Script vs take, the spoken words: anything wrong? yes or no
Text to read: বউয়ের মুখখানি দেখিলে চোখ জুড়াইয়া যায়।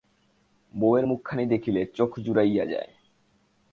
no